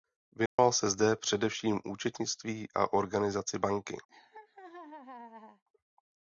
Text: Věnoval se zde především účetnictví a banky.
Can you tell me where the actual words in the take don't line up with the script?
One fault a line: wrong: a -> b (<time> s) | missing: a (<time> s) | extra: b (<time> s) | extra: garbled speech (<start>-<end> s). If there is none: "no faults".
extra: organizaci (2.9 s)